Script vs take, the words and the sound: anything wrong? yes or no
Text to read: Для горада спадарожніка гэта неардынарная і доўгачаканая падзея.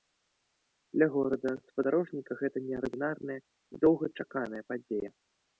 no